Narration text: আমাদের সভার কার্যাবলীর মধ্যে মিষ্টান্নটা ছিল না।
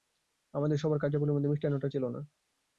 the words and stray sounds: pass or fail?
pass